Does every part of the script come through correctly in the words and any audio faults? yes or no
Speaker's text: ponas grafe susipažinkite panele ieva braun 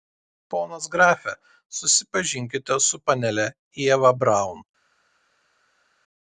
no